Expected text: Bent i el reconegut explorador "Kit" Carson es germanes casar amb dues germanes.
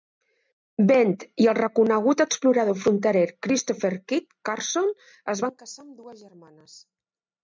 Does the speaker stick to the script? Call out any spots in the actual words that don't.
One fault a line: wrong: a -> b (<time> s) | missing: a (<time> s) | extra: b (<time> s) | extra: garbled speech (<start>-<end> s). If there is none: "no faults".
extra: fronterer Christopher (2.8 s)
wrong: germanes -> van (5.5 s)